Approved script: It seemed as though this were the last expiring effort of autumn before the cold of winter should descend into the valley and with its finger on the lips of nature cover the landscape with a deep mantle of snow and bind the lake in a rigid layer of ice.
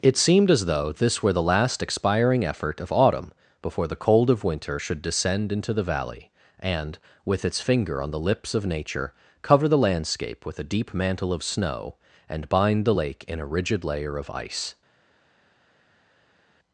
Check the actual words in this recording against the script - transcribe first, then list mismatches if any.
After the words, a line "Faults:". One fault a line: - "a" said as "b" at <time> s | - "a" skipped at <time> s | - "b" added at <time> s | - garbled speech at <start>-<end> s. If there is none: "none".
It seemed as though this were the last expiring effort of autumn before the cold of winter should descend into the valley and with its finger on the lips of nature cover the landscape with a deep mantle of snow and bind the lake in a rigid layer of ice.
Faults:
none